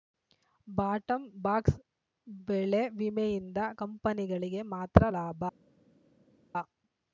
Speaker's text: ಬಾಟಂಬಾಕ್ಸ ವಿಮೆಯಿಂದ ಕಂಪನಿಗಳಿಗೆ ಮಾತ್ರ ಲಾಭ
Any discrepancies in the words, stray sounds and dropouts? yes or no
yes